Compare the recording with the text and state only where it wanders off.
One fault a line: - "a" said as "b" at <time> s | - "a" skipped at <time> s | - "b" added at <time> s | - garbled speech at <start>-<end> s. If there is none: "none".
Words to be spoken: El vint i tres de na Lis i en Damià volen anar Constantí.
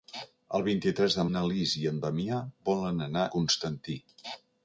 none